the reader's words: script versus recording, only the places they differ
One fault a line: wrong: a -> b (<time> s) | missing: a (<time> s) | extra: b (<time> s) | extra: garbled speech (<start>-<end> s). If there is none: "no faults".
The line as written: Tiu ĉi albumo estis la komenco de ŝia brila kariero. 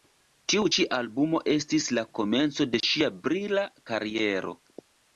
no faults